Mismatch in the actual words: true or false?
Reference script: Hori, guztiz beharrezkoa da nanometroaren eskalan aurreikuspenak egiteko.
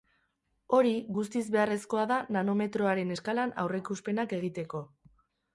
false